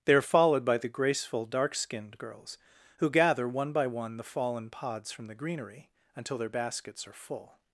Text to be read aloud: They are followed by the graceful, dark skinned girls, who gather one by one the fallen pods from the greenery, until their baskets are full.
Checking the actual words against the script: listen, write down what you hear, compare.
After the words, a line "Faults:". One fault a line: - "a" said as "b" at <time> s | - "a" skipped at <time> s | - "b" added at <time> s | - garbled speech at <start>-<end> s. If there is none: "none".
They are followed by the graceful, dark skinned girls, who gather one by one the fallen pods from the greenery, until their baskets are full.
Faults:
none